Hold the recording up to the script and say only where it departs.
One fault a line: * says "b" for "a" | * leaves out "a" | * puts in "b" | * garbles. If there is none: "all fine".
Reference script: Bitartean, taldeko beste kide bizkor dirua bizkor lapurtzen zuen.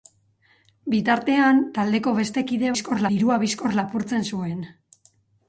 all fine